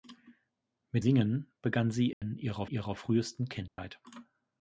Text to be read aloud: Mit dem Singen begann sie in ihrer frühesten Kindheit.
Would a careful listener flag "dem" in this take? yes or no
yes